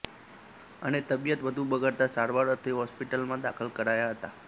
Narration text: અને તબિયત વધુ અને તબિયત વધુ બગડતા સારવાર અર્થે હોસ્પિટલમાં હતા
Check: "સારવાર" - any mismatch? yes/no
no